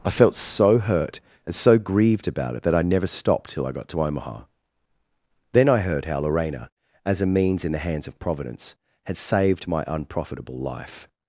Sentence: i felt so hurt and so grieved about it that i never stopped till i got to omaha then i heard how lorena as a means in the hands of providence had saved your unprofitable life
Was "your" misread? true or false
true